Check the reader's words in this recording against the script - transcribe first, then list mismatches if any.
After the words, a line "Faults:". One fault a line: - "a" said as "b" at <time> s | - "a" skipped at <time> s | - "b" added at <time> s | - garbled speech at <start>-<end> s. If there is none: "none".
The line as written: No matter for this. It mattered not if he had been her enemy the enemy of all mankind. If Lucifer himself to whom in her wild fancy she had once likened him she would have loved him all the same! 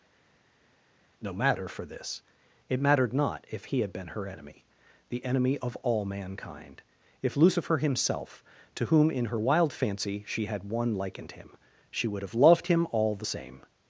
No matter for this. It mattered not if he had been her enemy the enemy of all mankind. If Lucifer himself to whom in her wild fancy she had one likened him she would have loved him all the same!
Faults:
- "once" said as "one" at 10.6 s